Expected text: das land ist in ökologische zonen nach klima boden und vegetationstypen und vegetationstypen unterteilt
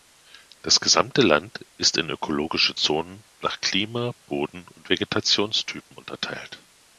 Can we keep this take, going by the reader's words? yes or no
no